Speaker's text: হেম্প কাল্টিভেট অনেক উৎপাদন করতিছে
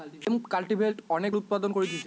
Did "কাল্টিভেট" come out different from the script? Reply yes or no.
no